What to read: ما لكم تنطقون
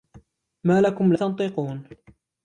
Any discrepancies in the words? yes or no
no